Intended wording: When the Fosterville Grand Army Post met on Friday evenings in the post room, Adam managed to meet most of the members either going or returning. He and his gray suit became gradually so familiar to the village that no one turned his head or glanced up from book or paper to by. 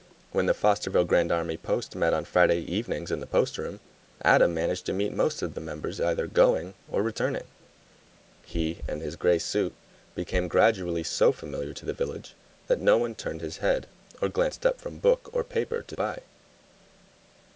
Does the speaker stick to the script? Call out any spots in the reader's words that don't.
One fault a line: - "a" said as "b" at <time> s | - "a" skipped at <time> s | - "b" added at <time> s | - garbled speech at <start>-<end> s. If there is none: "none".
none